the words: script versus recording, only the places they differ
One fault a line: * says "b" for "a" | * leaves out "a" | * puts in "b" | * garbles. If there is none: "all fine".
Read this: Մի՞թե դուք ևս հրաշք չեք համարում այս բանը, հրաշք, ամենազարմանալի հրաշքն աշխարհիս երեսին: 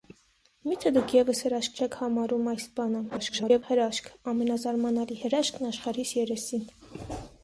* garbles